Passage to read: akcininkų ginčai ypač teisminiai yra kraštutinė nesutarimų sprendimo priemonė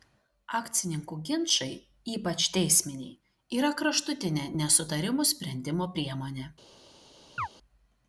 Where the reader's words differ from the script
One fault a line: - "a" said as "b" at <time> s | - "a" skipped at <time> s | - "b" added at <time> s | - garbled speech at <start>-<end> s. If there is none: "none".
none